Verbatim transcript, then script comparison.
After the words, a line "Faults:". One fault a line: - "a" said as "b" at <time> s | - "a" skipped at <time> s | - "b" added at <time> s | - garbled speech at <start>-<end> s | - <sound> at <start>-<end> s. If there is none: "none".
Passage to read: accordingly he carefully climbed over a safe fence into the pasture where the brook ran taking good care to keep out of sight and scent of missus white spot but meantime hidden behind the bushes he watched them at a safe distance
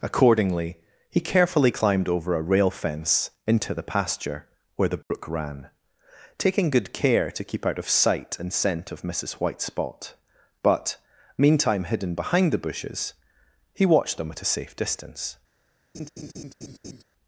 accordingly he carefully climbed over a rail fence into the pasture where the brook ran taking good care to keep out of sight and scent of missus white spot but meantime hidden behind the bushes he watched them at a safe distance
Faults:
- "safe" said as "rail" at 2.4 s
- dropout at 5.0-5.1 s
- laugh at 15.9-17.0 s